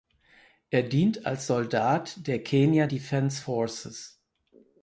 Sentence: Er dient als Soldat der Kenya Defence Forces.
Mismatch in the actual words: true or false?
false